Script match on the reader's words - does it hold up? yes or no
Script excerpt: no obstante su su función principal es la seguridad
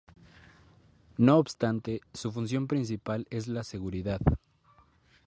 no